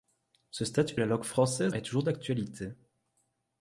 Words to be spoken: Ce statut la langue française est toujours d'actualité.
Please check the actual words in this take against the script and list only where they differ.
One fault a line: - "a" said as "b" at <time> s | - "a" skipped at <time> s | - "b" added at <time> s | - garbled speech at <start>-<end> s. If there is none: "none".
none